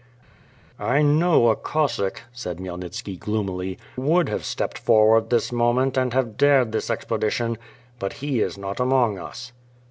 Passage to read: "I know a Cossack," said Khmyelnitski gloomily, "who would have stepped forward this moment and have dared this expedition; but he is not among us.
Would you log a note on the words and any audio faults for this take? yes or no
yes